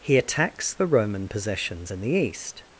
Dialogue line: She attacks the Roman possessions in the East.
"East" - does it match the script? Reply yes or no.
yes